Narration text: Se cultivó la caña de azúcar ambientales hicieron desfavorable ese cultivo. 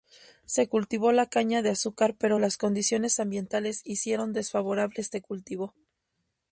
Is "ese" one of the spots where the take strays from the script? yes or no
yes